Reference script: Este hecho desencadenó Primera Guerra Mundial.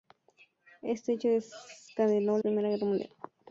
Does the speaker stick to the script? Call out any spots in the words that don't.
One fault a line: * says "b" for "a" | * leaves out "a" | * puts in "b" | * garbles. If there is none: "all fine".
all fine